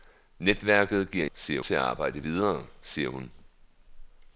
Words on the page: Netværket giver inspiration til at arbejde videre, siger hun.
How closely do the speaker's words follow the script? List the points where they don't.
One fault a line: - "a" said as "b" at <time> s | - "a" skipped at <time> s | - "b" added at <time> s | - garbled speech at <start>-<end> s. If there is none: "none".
- "inspiration" said as "siger" at 1.3 s